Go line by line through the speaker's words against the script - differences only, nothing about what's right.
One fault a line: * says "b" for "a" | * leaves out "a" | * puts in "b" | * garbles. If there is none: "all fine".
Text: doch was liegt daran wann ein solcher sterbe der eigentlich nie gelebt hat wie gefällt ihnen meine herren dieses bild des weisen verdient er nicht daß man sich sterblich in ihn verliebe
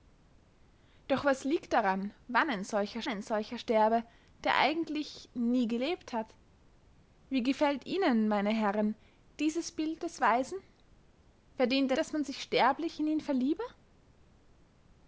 * puts in "ein solcher"
* leaves out "nicht"